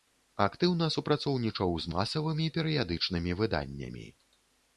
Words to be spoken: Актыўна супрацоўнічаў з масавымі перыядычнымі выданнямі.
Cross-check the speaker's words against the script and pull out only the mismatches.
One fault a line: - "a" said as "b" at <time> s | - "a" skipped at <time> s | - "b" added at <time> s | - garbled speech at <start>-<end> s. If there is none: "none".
none